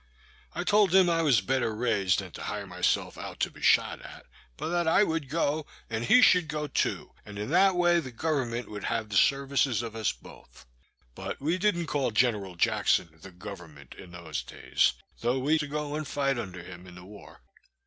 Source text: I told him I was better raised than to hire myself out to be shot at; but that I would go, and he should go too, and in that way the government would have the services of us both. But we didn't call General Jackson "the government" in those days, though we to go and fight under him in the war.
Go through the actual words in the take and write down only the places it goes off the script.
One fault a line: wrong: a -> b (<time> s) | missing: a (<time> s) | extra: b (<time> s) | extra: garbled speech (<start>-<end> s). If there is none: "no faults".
no faults